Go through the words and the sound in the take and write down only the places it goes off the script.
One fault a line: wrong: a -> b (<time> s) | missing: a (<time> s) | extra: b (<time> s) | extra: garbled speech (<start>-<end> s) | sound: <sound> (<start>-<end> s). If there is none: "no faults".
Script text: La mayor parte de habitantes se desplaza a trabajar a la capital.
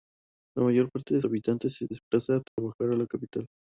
sound: dropout (2.5-2.6 s)